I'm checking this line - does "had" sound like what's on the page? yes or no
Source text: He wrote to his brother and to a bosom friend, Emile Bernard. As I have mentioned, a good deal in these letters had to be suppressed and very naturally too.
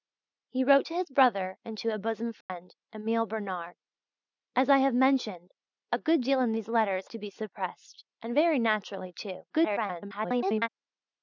no